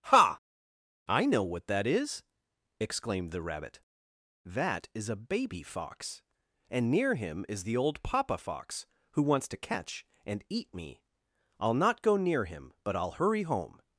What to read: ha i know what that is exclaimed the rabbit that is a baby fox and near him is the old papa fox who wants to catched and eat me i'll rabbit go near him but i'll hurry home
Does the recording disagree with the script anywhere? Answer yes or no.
yes